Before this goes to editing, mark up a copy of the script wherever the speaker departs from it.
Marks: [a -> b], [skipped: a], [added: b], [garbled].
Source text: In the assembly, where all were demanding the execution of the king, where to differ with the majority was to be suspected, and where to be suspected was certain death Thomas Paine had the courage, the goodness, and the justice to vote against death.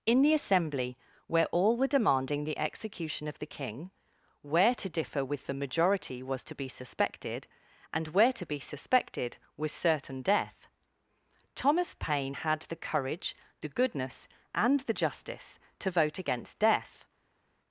In the assembly, where all were demanding the execution of the king, where to differ with the majority was to be suspected, and where to be suspected was certain death Thomas Paine had the courage, the goodness, and the justice to vote against death.